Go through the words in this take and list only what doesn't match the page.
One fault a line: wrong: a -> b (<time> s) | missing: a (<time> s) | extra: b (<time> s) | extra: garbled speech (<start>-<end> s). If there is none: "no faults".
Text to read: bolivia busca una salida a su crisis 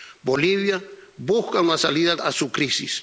no faults